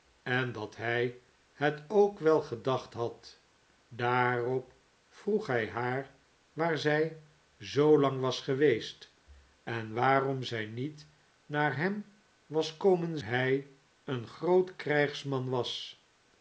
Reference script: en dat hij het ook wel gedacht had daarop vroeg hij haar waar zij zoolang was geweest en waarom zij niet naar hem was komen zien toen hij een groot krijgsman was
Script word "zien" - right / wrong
wrong